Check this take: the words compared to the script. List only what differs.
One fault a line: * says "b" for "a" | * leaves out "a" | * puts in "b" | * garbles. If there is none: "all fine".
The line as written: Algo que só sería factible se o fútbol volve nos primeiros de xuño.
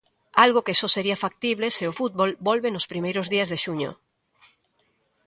* puts in "días"